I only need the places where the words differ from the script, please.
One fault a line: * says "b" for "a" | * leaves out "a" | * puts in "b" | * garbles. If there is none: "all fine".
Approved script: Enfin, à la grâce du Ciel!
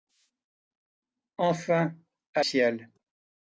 * leaves out "la grâce du"